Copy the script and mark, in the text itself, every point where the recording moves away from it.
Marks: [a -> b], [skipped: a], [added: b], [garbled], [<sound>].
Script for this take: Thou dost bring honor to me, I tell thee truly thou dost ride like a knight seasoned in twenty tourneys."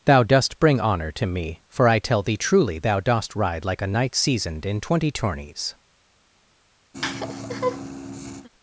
Thou dost bring honor to me, [added: for] I tell thee truly thou dost ride like a knight seasoned in twenty tourneys." [laugh]